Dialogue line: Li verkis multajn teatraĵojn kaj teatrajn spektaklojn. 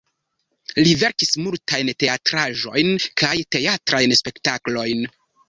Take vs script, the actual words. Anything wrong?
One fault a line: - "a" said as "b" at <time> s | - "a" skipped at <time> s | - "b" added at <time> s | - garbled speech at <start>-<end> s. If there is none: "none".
none